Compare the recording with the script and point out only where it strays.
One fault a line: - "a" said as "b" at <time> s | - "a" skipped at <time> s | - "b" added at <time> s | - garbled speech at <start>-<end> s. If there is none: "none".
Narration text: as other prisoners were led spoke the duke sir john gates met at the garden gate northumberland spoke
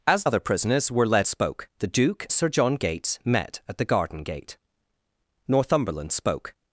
none